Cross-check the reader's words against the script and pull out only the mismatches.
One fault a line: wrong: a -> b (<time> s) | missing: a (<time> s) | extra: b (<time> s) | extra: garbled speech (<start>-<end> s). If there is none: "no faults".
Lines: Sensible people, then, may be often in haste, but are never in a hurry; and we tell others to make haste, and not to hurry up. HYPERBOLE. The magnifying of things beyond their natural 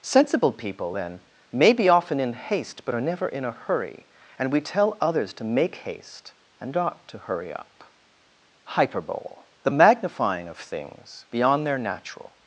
no faults